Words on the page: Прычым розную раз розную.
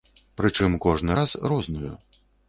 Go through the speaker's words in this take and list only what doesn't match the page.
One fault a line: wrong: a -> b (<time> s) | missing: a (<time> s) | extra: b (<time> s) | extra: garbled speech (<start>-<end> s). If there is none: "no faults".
wrong: розную -> кожны (0.9 s)